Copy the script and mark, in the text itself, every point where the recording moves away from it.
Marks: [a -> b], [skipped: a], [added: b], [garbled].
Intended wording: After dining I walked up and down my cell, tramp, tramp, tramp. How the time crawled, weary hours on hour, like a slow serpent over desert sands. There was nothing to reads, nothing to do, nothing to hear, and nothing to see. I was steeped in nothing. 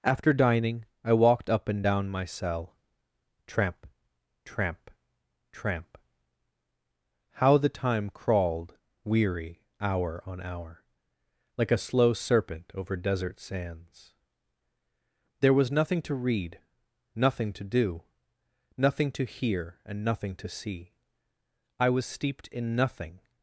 After dining I walked up and down my cell, tramp, tramp, tramp. How the time crawled, weary [hours -> hour] on hour, like a slow serpent over desert sands. There was nothing to [reads, -> read] nothing to do, nothing to hear, and nothing to see. I was steeped in nothing.